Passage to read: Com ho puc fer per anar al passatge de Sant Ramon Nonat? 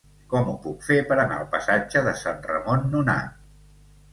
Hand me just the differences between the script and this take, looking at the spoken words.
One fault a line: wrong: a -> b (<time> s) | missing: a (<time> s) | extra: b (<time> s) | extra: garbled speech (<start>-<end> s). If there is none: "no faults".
no faults